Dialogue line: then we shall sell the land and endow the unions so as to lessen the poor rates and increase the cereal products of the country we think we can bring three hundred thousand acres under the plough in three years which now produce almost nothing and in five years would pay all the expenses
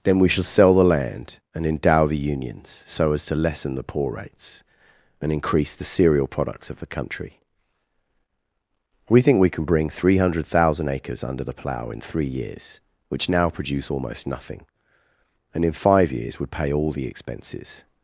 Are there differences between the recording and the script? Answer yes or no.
no